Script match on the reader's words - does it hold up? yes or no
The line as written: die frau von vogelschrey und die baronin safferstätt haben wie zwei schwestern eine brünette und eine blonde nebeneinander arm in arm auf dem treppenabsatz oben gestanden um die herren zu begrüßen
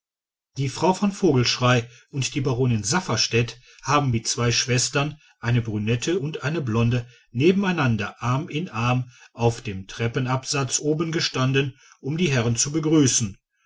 yes